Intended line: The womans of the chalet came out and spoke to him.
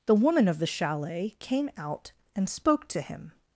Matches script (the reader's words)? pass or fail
fail